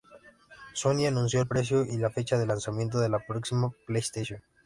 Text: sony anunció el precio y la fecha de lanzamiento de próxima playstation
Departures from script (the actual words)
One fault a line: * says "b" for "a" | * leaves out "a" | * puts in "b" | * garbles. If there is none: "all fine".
* puts in "la"